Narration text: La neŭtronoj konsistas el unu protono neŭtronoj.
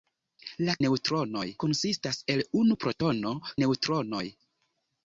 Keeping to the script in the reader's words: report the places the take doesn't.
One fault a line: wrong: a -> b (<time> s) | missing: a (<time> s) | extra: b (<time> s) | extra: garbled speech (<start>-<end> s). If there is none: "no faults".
no faults